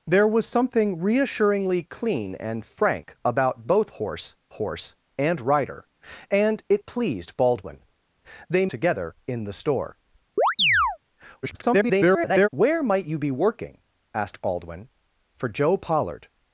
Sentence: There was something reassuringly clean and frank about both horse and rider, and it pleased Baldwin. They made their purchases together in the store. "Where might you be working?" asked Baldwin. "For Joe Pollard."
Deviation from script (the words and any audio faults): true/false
true